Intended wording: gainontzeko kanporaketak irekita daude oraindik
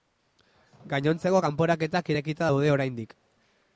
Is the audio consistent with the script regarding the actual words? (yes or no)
yes